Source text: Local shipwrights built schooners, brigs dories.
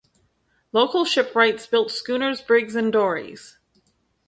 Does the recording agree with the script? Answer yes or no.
no